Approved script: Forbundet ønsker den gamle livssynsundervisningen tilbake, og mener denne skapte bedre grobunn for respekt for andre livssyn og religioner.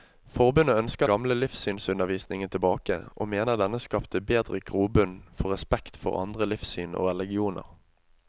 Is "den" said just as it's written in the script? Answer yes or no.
no